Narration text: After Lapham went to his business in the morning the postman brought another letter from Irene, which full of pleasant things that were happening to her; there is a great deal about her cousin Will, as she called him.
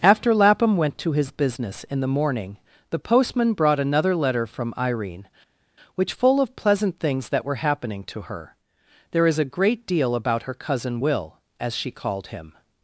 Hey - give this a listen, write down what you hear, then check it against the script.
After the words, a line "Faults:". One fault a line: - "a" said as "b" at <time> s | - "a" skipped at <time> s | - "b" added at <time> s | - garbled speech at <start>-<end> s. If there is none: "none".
After Lapham went to his business in the morning the postman brought another letter from Irene, which full of pleasant things that were happening to her; there is a great deal about her cousin Will, as she called him.
Faults:
none